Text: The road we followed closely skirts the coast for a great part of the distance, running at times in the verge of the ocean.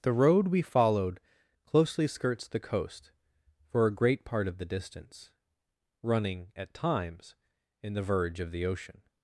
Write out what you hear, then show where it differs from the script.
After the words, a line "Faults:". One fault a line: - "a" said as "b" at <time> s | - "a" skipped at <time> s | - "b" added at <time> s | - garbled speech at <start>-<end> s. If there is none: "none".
The road we followed closely skirts the coast for a great part of the distance, running at times in the verge of the ocean.
Faults:
none